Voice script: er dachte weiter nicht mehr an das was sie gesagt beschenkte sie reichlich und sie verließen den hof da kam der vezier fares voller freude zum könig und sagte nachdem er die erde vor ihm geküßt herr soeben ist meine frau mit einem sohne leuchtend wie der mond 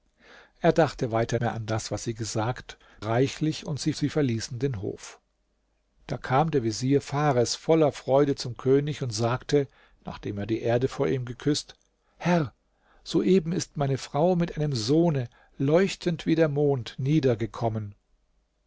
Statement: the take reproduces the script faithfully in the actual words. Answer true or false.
false